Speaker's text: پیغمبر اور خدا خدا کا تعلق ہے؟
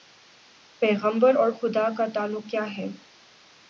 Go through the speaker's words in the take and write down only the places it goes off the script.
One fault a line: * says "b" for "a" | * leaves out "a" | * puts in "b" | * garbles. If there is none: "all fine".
* leaves out "خدا"
* puts in "کیا"